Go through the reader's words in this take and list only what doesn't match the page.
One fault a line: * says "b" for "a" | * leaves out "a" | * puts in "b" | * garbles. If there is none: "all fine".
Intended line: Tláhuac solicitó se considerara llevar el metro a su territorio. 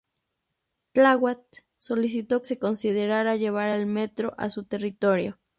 all fine